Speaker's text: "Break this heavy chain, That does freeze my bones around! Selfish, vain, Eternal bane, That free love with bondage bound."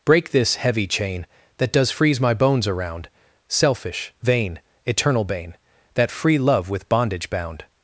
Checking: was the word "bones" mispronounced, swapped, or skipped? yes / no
no